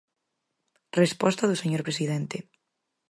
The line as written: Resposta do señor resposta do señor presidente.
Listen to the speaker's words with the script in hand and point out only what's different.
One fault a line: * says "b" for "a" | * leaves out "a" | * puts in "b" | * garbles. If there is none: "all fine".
* leaves out "resposta do señor"